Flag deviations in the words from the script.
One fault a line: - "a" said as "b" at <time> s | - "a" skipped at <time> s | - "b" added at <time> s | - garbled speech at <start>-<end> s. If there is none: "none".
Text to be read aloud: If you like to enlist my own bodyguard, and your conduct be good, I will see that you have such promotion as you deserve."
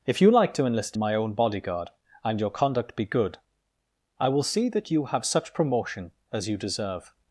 none